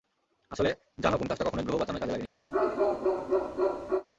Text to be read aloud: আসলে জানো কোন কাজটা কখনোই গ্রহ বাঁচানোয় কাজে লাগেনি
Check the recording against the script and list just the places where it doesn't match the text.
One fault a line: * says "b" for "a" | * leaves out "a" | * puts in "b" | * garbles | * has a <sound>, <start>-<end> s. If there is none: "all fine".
* has a bark, 2.5-4.1 s